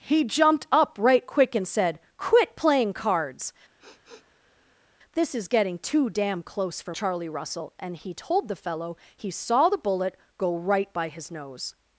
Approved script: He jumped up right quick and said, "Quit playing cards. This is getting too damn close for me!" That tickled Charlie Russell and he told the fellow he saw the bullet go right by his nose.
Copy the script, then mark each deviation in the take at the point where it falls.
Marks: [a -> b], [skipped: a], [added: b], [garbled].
He jumped up right quick and said, "Quit playing cards. This is getting too damn close for [skipped: me!" That tickled] Charlie Russell and he told the fellow he saw the bullet go right by his nose.